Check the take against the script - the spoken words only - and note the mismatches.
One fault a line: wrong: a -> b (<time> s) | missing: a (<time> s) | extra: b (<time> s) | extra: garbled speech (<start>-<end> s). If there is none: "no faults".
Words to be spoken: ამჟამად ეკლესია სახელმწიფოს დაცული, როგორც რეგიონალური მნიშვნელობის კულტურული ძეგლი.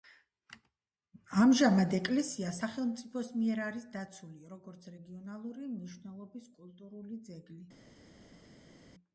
extra: მიერ არის (3.4 s)